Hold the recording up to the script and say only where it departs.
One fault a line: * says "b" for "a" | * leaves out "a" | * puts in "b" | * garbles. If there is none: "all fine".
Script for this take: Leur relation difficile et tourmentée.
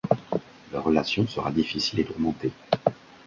* puts in "sera"